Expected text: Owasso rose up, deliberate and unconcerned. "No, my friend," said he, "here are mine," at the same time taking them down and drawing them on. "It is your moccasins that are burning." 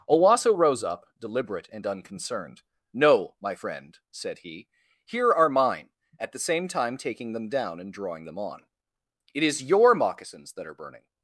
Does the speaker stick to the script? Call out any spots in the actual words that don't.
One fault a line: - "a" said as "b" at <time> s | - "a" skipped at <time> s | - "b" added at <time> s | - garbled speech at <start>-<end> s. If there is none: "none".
none